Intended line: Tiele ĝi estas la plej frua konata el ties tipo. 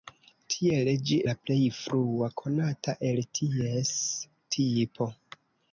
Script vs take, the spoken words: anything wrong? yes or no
yes